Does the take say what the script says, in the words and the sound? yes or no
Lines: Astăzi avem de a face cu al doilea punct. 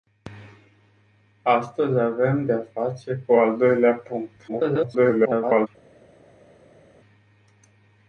no